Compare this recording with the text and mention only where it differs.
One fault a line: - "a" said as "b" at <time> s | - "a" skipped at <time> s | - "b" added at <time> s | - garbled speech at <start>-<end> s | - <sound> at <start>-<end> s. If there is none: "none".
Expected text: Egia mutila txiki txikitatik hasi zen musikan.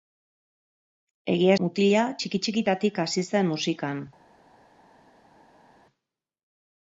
none